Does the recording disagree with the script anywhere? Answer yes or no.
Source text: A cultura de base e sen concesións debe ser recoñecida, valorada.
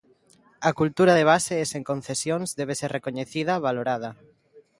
no